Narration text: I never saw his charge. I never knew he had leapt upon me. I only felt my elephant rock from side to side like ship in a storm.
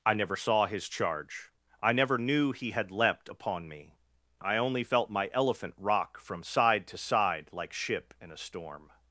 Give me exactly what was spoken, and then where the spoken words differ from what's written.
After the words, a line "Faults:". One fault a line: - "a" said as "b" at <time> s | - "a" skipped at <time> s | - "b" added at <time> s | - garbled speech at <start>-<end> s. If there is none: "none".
I never saw his charge. I never knew he had leapt upon me. I only felt my elephant rock from side to side like ship in a storm.
Faults:
none